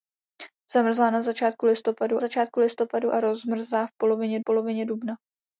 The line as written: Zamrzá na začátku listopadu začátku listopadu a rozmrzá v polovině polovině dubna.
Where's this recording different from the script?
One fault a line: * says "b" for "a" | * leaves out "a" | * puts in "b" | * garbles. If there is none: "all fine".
all fine